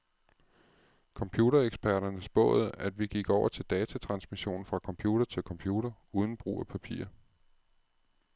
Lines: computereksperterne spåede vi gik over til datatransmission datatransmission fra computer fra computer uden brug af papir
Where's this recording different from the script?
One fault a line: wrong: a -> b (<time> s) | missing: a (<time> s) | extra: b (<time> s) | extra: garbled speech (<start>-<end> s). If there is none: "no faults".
extra: at (2.8 s)
missing: datatransmission (4.7 s)
wrong: fra -> til (5.2 s)